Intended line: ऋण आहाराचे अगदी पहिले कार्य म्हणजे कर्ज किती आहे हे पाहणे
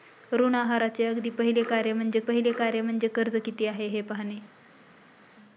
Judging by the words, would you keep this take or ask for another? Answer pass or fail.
fail